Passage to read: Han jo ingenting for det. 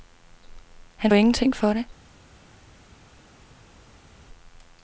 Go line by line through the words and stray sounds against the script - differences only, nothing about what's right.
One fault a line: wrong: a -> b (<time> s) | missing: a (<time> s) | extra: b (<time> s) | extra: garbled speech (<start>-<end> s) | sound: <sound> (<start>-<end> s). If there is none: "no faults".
no faults